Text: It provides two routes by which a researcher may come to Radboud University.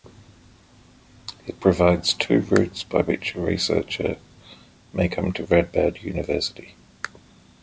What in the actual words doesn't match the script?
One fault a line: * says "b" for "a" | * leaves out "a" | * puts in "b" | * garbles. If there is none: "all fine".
all fine